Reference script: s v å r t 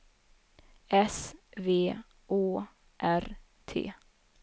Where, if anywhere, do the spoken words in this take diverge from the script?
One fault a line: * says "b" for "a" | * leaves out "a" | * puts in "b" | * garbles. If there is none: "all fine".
all fine